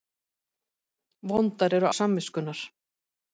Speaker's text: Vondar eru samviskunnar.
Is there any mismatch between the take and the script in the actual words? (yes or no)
no